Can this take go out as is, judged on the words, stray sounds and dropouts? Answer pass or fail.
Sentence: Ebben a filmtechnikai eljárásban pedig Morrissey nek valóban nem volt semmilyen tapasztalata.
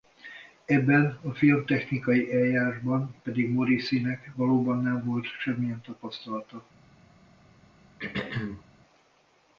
fail